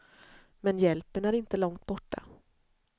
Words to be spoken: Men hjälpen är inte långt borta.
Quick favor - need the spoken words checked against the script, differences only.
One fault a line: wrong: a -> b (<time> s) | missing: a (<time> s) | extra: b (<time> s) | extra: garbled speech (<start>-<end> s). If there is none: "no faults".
no faults